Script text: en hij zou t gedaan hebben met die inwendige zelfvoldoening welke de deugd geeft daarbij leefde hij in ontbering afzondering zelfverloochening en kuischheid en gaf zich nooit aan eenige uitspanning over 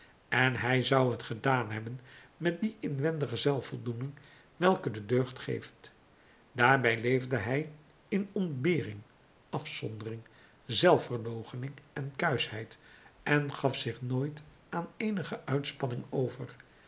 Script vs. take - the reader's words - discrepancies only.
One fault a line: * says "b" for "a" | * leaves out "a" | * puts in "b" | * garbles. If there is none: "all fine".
all fine